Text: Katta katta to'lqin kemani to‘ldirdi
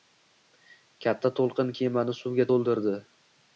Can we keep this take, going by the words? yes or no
no